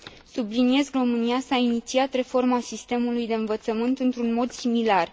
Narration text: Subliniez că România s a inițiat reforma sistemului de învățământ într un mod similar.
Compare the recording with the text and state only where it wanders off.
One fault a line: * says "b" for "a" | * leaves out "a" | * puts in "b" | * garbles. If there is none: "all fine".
all fine